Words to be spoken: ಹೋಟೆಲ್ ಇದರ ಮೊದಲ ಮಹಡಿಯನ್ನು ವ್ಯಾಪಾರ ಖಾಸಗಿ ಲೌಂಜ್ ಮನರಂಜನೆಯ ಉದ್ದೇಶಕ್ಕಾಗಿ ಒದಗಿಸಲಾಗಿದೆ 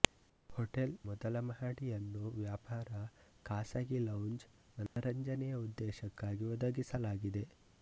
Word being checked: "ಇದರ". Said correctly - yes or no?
no